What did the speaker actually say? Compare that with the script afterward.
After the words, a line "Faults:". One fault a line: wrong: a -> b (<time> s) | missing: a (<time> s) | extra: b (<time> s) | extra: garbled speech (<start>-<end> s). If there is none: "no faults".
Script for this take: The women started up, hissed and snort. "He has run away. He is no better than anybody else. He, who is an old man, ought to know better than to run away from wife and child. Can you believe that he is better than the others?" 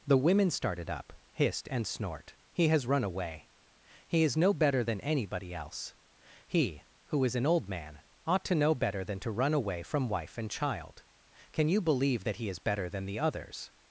The women started up, hissed and snort. "He has run away. He is no better than anybody else. He, who is an old man, ought to know better than to run away from wife and child. Can you believe that he is better than the others?"
Faults:
no faults